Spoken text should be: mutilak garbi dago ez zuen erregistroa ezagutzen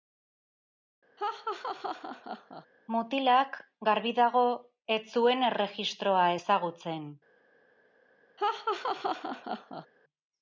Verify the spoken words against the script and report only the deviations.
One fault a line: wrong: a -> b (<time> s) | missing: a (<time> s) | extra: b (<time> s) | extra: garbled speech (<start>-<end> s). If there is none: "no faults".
no faults